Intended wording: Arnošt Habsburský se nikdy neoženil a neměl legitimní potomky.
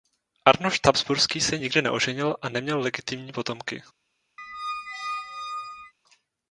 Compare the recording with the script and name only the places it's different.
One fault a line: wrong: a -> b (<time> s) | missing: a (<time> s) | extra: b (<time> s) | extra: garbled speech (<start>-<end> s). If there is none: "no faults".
no faults